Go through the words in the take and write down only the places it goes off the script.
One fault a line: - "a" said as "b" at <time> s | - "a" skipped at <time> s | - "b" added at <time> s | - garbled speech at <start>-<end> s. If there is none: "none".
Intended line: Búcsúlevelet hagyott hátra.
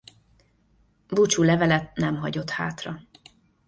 - "nem" added at 2.0 s